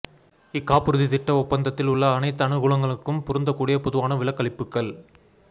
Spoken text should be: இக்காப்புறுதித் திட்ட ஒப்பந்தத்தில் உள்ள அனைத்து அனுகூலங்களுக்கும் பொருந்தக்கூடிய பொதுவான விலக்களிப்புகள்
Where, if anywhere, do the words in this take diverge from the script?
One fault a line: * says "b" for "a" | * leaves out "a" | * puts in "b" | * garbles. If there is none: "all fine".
all fine